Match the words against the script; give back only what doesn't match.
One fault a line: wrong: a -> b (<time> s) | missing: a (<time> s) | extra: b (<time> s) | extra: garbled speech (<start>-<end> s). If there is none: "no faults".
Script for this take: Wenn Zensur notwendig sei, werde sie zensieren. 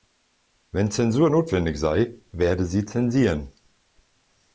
no faults